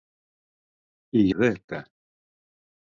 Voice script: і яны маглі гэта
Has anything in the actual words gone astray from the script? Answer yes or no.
yes